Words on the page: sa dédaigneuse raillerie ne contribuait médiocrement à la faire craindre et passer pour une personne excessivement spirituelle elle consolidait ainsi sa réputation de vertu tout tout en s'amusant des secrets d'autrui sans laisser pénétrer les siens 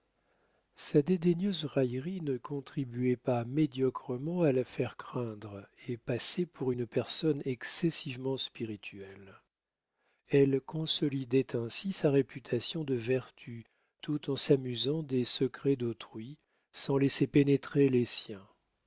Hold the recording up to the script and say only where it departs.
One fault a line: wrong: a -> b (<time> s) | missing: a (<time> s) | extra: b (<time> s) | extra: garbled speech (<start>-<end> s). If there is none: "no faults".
extra: pas (3.2 s)
missing: tout (14.3 s)